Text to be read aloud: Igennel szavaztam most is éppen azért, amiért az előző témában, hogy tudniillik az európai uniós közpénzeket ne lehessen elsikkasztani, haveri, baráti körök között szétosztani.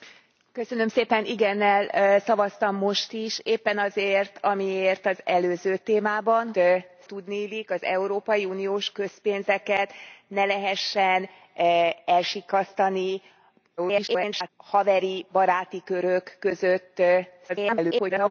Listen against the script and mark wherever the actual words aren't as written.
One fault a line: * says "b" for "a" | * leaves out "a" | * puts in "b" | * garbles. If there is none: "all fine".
* says "szétosztani" for "hogy"
* garbles
* garbles